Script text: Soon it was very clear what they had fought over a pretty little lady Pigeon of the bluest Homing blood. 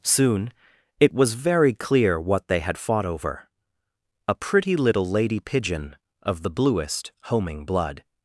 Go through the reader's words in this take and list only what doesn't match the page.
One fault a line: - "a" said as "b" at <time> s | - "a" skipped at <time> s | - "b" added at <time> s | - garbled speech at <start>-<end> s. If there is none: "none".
none